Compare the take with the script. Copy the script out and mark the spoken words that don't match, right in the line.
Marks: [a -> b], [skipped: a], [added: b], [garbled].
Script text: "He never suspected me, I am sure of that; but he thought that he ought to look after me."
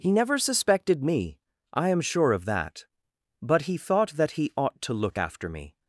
"He never suspected me, I am sure of that; but he thought that he ought to look after me."